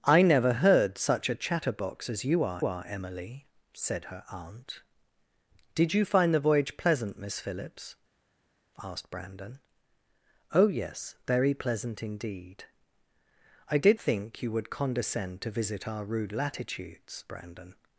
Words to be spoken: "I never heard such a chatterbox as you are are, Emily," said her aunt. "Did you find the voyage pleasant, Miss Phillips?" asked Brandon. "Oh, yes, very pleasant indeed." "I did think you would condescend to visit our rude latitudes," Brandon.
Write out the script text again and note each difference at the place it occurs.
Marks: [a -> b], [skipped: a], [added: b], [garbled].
"I never heard such a chatterbox as you are are, Emily," said her aunt. "Did you find the voyage pleasant, Miss Phillips?" asked Brandon. "Oh, yes, very pleasant indeed." "I did think you would condescend to visit our rude latitudes," Brandon.